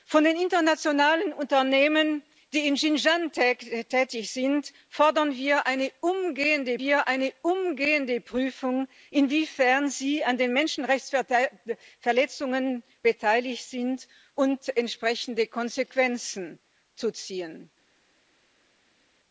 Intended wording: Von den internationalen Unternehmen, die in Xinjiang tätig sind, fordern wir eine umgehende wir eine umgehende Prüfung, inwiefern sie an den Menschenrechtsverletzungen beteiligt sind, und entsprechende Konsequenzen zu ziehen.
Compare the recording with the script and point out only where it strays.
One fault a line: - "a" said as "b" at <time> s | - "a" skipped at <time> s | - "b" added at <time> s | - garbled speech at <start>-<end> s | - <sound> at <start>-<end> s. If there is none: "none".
none